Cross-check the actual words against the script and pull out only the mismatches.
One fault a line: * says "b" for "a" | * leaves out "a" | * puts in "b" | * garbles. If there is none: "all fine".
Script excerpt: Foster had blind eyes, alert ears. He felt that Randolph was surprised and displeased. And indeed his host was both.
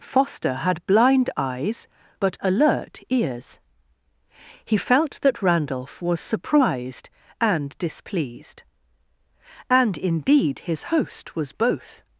* puts in "but"